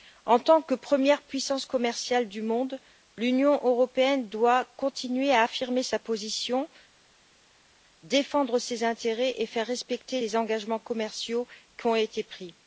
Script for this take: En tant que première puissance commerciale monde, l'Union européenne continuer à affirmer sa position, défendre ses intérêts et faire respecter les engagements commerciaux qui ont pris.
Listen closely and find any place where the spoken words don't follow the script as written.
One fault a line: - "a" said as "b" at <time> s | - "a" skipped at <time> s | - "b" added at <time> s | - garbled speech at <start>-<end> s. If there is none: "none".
- "du" added at 2.3 s
- "doit" added at 4.3 s
- "été" added at 12.0 s